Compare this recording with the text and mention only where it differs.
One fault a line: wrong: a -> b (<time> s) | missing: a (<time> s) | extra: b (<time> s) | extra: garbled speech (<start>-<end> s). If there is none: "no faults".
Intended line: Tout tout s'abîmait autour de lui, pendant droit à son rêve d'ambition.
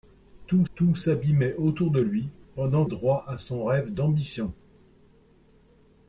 no faults